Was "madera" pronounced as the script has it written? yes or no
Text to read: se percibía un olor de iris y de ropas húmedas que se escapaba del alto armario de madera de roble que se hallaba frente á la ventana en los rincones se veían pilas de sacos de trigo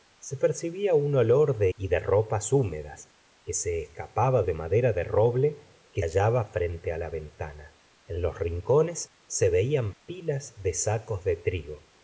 yes